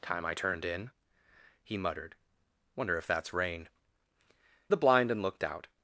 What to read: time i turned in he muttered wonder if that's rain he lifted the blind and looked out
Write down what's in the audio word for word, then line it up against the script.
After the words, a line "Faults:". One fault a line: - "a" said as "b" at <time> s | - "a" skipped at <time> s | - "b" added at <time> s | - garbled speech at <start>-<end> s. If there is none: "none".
time i turned in he muttered wonder if that's rain the blind and looked out
Faults:
- "he lifted" skipped at 3.7 s